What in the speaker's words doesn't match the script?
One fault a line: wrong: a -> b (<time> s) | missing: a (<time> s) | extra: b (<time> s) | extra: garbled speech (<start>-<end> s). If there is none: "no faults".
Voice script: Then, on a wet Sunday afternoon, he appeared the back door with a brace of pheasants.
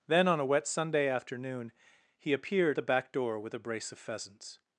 no faults